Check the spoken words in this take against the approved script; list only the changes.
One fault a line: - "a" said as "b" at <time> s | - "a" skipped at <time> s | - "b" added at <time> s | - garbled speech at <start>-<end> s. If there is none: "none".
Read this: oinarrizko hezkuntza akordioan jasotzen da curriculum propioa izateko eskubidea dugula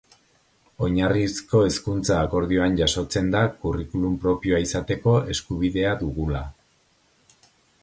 none